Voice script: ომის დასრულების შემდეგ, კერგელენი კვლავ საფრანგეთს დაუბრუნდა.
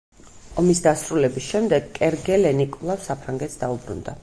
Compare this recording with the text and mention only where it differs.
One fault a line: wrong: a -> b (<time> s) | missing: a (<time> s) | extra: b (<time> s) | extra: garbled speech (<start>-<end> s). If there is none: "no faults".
no faults